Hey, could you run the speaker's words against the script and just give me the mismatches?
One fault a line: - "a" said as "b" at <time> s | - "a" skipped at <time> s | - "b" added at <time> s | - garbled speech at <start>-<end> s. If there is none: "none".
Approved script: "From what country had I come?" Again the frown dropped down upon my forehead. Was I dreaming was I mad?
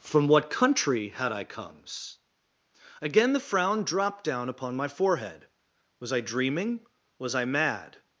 - "come" said as "comes" at 1.4 s